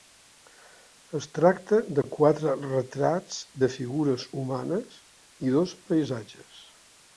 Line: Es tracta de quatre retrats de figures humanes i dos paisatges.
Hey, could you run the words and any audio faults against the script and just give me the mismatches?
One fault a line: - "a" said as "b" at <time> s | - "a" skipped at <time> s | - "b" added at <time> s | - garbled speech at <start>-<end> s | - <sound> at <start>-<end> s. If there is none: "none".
none